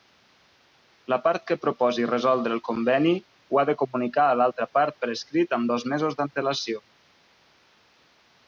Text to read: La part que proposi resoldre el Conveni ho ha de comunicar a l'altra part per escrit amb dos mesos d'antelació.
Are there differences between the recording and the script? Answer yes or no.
no